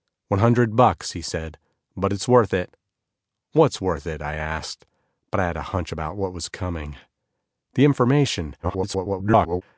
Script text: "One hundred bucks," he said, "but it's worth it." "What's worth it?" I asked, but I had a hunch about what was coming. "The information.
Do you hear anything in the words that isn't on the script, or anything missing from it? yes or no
yes